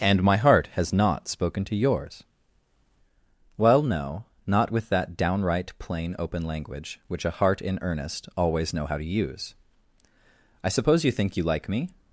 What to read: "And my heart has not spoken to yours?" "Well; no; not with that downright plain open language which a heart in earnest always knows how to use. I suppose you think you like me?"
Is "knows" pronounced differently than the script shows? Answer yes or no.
yes